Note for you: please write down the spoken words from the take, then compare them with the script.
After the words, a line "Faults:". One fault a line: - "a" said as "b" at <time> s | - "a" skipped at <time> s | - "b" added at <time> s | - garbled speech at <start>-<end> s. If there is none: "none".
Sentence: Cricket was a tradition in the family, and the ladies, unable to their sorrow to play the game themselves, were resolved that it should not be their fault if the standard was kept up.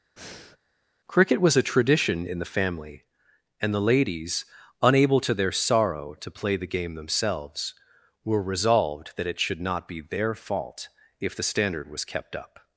Cricket was a tradition in the family, and the ladies, unable to their sorrow to play the game themselves, were resolved that it should not be their fault if the standard was kept up.
Faults:
none